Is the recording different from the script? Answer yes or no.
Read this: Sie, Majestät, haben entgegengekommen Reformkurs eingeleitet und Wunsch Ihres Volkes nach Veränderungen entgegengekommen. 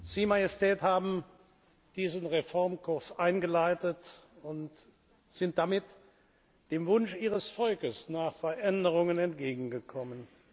yes